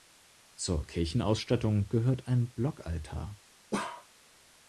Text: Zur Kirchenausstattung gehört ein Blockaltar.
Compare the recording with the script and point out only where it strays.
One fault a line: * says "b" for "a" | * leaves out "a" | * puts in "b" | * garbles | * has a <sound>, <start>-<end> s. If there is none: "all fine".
* has a bark, 3.7-4.1 s